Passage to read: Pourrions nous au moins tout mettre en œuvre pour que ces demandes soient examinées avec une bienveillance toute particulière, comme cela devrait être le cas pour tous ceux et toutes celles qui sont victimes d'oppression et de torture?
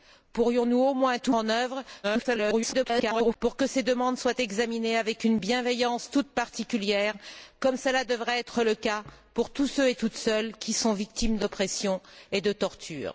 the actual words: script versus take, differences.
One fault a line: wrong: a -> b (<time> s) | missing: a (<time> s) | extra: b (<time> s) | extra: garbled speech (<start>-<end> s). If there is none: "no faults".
missing: mettre (1.3 s)
extra: garbled speech (2.0-3.4 s)